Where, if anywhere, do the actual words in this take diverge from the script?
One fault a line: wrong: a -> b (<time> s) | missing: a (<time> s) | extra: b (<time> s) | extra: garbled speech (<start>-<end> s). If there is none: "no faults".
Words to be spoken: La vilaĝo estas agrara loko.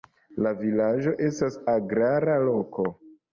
no faults